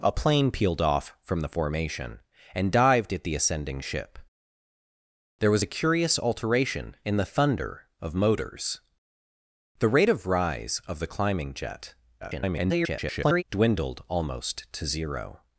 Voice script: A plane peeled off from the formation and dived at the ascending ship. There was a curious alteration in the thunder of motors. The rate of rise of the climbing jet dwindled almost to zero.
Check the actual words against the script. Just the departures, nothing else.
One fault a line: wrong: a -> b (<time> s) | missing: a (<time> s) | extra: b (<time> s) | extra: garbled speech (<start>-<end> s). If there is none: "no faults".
extra: garbled speech (12.2-13.4 s)